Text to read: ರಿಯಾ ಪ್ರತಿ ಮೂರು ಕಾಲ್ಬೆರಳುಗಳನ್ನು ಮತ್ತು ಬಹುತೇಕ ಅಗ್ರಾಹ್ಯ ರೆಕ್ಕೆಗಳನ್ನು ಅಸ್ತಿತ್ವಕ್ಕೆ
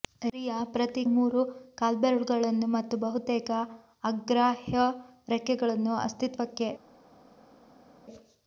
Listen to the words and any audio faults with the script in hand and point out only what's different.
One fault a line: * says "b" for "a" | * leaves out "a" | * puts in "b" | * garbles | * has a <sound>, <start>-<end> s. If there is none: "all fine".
all fine